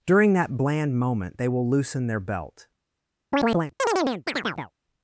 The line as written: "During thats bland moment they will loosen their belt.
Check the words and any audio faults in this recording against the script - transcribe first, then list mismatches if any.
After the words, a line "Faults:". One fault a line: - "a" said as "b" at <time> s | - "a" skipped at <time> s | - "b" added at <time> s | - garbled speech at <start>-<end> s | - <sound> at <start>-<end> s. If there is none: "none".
"During that bland moment they will loosen their belt.
Faults:
- "thats" said as "that" at 0.3 s
- chirp at 3.3-4.7 s